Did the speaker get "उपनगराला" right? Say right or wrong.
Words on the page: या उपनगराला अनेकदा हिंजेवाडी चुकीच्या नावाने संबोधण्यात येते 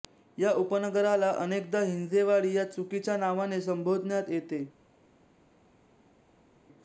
right